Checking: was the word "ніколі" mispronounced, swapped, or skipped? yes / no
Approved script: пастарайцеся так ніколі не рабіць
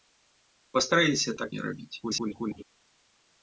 yes